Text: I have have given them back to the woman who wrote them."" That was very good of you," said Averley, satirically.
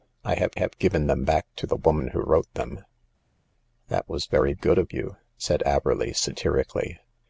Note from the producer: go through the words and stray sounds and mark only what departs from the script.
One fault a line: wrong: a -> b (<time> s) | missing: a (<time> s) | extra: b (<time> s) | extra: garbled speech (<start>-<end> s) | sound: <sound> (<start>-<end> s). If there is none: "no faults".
no faults